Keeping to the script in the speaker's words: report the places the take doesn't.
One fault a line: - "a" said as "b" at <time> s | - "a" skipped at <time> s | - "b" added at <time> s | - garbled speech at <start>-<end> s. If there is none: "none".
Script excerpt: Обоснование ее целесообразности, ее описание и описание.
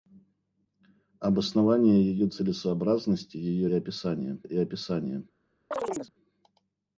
none